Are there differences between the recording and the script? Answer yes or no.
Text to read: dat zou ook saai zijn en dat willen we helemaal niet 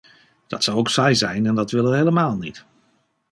no